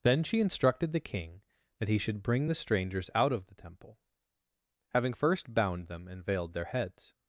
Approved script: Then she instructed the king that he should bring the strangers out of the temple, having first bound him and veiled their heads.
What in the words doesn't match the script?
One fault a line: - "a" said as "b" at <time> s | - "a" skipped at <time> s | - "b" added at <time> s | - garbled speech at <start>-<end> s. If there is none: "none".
- "him" said as "them" at 5.9 s